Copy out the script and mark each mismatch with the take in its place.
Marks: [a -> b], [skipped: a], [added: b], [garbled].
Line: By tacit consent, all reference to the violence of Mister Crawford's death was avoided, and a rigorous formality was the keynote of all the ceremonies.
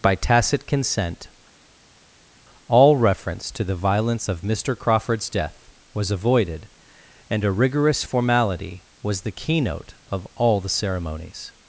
By tacit consent, all reference to the violence of Mister Crawford's death was avoided, and a rigorous formality was the keynote of all the ceremonies.